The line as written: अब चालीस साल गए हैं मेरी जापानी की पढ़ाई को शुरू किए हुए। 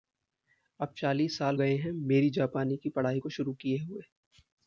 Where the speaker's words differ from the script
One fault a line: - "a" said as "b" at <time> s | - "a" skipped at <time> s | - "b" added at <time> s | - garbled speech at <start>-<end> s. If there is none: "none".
none